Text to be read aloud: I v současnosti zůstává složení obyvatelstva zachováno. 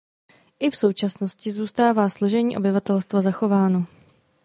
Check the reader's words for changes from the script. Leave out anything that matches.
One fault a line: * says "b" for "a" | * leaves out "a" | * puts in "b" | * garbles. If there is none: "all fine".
all fine